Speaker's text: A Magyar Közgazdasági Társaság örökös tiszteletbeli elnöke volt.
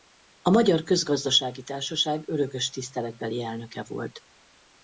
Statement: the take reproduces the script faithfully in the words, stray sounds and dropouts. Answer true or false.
true